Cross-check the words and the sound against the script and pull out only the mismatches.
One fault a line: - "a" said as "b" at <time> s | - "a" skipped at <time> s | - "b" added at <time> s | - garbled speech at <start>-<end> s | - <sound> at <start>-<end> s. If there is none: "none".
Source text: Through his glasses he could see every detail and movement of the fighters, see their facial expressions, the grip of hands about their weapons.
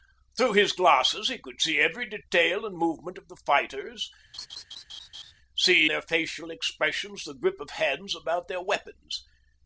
- laugh at 4.3-5.3 s